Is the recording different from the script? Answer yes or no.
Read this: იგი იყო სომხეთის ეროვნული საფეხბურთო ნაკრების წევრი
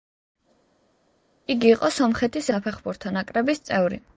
yes